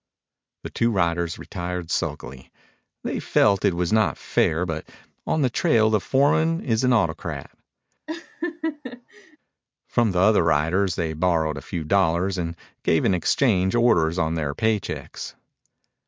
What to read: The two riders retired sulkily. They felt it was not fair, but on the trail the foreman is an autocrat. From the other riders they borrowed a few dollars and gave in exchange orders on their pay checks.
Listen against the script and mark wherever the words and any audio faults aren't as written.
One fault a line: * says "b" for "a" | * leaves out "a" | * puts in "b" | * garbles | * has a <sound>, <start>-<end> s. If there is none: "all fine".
* has a laugh, 8.1-9.4 s